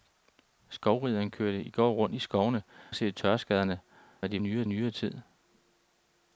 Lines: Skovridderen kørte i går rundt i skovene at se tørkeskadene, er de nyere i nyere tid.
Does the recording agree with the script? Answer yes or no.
yes